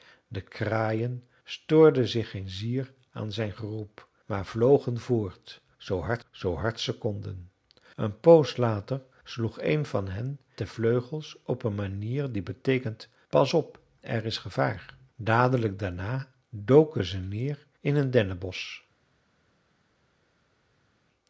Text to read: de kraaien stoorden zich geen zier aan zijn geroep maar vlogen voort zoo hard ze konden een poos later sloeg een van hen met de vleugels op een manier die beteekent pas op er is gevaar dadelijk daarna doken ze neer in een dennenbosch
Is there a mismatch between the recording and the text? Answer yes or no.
yes